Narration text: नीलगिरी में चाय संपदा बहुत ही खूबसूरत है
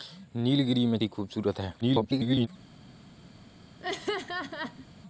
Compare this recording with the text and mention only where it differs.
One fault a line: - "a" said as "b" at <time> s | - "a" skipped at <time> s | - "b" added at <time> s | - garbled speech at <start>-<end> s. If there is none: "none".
- "चाय संपदा बहुत" skipped at 1.0 s
- garbled speech at 1.8-2.5 s